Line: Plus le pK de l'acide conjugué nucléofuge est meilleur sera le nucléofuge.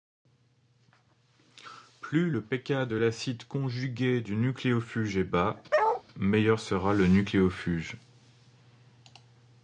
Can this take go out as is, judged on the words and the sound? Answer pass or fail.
fail